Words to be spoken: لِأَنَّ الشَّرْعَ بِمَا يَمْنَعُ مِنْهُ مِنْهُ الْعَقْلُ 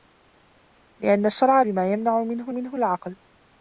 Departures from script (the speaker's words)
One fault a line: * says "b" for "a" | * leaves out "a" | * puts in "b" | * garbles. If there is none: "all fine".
all fine